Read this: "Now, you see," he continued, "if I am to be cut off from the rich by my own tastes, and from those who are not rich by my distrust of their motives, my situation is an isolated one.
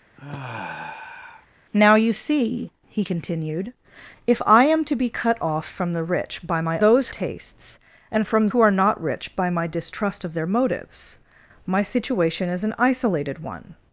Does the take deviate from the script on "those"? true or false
true